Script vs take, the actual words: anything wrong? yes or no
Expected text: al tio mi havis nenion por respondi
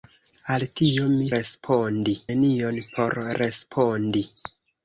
yes